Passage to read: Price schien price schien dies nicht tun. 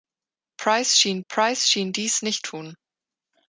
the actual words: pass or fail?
pass